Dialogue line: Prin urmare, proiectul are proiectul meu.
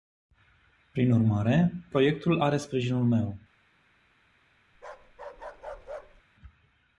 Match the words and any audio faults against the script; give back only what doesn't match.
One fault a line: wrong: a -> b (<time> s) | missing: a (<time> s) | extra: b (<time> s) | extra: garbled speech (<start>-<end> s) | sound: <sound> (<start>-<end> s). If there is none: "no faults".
wrong: proiectul -> sprijinul (2.6 s)
sound: bark (4.7-6.2 s)